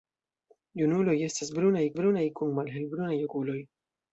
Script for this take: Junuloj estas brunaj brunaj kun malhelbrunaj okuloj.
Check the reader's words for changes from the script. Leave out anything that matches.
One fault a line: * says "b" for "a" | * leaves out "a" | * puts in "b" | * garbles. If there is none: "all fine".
all fine